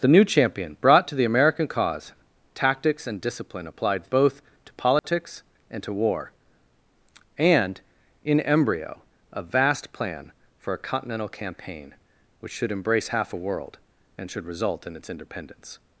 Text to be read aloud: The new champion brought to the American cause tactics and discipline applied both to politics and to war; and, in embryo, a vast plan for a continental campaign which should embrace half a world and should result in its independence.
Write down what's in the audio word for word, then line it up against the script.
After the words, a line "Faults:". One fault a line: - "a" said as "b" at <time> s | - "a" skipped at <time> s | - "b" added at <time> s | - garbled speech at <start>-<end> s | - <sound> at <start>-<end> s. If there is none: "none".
The new champion brought to the American cause tactics and discipline applied both to politics and to war; and, in embryo, a vast plan for a continental campaign which should embrace half a world and should result in its independence.
Faults:
- dropout at 5.0-5.0 s